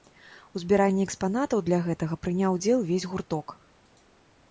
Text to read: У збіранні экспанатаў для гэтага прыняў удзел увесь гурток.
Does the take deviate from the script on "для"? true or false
false